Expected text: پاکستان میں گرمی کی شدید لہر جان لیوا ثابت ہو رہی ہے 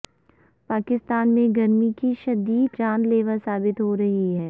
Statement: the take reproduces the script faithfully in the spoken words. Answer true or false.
false